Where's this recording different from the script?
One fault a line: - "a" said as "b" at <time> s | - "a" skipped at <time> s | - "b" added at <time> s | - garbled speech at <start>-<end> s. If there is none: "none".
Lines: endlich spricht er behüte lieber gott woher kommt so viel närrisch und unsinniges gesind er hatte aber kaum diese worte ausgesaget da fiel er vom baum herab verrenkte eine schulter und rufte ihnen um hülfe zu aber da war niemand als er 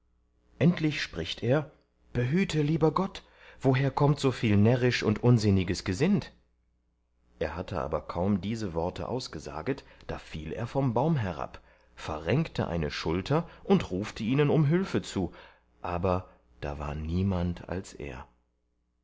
none